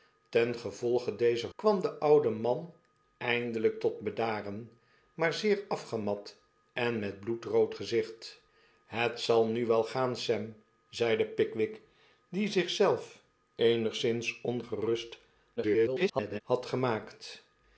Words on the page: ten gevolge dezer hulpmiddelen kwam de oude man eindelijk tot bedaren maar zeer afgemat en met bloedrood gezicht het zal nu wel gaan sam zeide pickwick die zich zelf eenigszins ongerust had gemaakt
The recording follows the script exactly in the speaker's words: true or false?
false